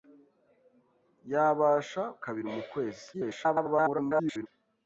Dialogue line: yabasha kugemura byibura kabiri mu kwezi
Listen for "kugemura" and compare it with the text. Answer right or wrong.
wrong